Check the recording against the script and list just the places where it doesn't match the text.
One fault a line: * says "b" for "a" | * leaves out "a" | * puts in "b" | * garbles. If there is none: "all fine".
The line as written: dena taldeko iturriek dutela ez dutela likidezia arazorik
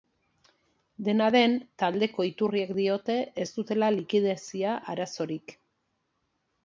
* puts in "den"
* says "diote" for "dutela"